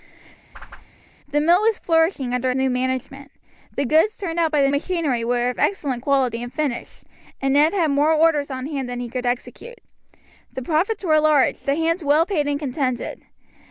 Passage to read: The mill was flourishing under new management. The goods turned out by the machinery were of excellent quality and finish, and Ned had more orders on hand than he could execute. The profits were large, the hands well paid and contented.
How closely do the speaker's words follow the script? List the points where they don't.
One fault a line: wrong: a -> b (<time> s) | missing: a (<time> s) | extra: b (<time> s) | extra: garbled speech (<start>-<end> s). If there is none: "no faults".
no faults